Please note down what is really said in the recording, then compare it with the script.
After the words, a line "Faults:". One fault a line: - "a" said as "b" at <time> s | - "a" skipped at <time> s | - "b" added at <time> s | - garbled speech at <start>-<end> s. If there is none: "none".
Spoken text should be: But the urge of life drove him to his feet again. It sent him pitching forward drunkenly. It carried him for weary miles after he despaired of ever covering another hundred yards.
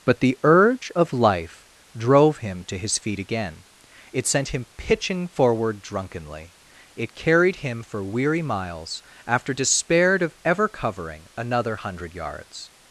But the urge of life drove him to his feet again. It sent him pitching forward drunkenly. It carried him for weary miles after despaired of ever covering another hundred yards.
Faults:
- "he" skipped at 9.5 s